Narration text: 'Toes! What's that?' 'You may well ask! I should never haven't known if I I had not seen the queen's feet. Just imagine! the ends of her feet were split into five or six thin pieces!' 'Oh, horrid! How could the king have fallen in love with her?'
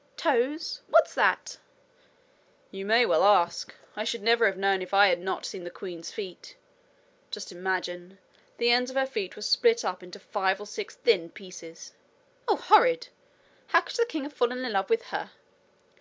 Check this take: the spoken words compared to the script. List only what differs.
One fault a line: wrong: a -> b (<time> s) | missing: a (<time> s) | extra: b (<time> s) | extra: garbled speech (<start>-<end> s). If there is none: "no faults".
wrong: haven't -> have (4.5 s)
missing: I (5.1 s)
extra: up (9.8 s)